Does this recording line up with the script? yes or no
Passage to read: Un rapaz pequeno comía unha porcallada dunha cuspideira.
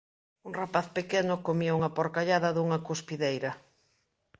yes